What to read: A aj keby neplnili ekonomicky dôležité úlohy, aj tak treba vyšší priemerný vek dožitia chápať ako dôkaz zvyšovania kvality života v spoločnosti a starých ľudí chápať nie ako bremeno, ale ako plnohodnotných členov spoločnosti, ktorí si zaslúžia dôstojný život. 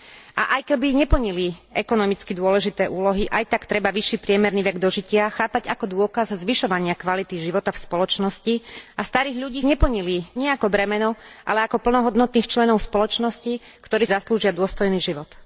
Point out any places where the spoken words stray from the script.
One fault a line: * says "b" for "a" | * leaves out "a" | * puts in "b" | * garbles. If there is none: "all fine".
* says "neplnili" for "chápať"
* leaves out "si"